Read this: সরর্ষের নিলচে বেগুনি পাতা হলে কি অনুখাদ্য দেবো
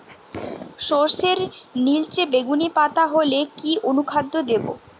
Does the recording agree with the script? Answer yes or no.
yes